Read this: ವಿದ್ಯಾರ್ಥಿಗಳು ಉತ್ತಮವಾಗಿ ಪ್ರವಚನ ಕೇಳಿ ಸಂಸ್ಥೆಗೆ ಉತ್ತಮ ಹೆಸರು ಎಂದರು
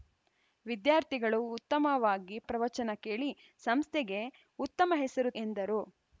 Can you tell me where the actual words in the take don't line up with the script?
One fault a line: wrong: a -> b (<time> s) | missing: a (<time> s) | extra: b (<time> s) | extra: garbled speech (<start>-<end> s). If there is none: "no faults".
no faults